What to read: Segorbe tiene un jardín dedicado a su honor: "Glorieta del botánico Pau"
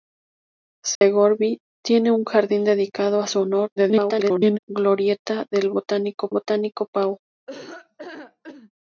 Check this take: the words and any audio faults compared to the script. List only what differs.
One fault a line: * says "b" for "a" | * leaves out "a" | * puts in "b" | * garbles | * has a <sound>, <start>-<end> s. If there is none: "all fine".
* has a dropout, 0.9-1.0 s
* garbles
* puts in "botánico"
* has a laugh, 7.5-8.7 s